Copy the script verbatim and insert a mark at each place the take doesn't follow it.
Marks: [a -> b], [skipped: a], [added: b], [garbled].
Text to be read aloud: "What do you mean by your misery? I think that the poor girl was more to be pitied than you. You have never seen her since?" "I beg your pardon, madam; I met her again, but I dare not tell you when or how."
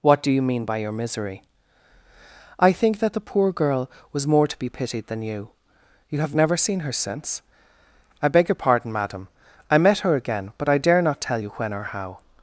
"What do you mean by your misery? I think that the poor girl was more to be pitied than you. You have never seen her since?" "I beg your pardon, madam; I met her again, but I dare not tell you when or how."